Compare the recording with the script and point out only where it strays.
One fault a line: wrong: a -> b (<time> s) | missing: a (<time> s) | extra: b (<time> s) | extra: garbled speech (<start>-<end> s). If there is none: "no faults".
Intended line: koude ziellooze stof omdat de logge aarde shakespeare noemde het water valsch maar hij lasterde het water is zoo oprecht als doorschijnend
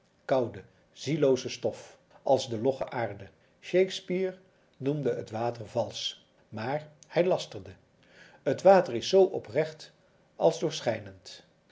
wrong: omdat -> als (2.2 s)